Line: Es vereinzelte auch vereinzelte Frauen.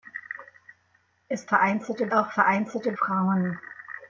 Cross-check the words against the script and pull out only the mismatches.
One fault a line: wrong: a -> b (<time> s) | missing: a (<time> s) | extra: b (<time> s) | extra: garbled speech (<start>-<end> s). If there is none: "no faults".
no faults